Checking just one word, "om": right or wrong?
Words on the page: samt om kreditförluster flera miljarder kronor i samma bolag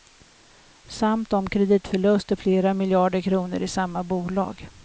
right